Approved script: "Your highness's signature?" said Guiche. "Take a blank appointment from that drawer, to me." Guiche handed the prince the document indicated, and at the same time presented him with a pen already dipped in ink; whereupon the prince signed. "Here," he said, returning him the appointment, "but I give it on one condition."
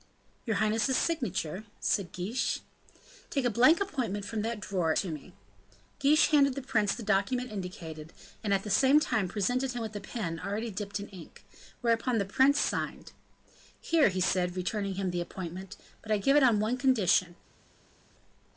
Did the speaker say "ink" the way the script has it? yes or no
yes